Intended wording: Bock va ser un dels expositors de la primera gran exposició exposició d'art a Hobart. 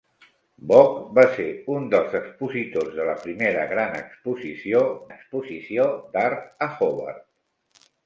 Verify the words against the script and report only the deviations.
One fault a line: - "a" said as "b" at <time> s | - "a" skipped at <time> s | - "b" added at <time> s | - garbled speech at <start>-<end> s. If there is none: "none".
none